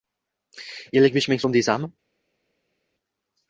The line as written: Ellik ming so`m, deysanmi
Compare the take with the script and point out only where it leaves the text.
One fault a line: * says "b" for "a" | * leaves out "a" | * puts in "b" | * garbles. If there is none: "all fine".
* puts in "besh"